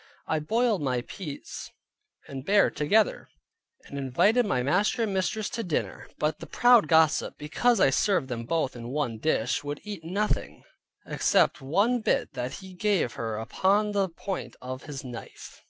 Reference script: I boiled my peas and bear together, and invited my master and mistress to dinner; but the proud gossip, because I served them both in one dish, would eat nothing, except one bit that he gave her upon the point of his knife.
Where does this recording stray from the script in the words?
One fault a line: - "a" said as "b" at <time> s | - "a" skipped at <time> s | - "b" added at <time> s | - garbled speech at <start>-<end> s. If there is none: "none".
none